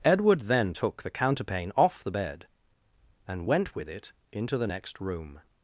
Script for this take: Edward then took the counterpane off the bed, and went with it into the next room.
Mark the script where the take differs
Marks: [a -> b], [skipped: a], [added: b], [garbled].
Edward then took the counterpane off the bed, and went with it into the next room.